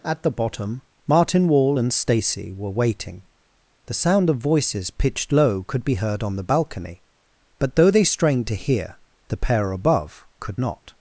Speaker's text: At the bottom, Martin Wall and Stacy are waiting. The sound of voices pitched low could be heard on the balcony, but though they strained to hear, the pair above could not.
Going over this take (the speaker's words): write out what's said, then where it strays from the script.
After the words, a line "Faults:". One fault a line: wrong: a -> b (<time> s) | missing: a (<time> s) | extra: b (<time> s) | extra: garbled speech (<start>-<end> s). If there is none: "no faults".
At the bottom, Martin Wall and Stacy were waiting. The sound of voices pitched low could be heard on the balcony, but though they strained to hear, the pair above could not.
Faults:
wrong: are -> were (2.5 s)